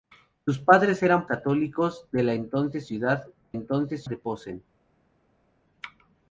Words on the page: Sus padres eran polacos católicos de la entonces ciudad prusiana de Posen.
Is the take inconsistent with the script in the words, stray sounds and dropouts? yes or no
yes